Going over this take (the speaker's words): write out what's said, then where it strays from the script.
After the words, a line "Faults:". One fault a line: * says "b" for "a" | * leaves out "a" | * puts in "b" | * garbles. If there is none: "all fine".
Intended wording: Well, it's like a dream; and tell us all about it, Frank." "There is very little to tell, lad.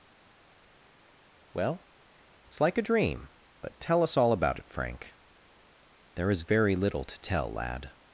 Well, it's like a dream; but tell us all about it, Frank." "There is very little to tell, lad.
Faults:
* says "but" for "and"